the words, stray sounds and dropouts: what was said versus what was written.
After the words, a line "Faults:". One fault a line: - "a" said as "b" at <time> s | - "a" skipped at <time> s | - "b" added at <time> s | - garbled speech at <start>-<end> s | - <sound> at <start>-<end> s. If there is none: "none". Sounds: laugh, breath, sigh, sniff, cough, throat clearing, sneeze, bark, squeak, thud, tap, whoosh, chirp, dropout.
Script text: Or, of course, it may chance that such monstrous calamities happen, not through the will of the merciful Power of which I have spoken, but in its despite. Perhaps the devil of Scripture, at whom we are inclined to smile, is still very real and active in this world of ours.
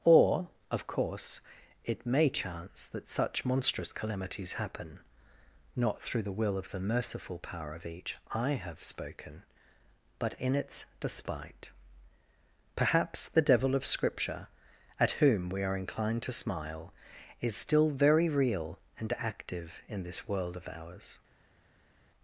Or, of course, it may chance that such monstrous calamities happen, not through the will of the merciful Power of each I have spoken, but in its despite. Perhaps the devil of Scripture, at whom we are inclined to smile, is still very real and active in this world of ours.
Faults:
- "which" said as "each" at 7.8 s